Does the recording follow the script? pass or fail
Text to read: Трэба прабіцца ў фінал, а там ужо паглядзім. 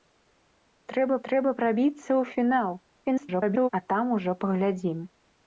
fail